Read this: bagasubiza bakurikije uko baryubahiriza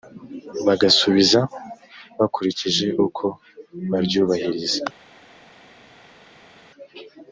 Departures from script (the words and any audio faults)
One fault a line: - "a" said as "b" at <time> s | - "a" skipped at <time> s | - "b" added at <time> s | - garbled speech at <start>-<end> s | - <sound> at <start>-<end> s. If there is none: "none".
none